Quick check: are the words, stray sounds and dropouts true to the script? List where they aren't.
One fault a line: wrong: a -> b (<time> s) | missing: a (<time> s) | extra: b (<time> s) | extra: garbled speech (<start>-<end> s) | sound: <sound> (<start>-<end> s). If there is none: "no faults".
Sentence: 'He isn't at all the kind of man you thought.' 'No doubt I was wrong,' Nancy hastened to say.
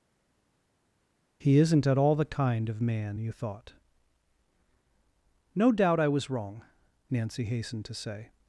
no faults